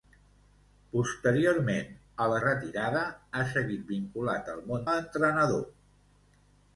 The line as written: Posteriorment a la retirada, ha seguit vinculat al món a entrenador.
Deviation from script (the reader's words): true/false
false